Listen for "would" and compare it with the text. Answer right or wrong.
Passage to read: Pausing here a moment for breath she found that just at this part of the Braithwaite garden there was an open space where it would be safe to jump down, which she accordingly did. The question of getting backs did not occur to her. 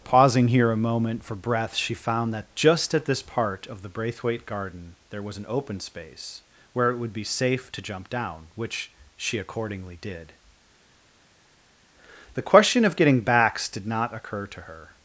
right